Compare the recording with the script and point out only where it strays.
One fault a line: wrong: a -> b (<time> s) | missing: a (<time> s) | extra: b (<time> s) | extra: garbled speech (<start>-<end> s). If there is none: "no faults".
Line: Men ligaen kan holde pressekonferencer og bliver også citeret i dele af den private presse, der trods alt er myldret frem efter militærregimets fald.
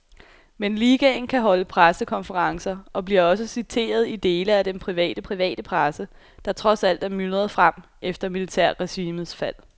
extra: private (5.2 s)